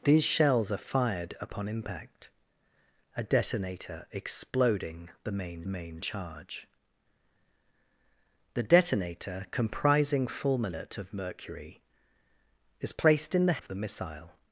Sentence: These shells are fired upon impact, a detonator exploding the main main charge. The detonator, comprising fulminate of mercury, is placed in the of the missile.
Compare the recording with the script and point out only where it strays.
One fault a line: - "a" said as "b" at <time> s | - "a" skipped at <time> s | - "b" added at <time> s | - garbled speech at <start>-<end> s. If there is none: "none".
none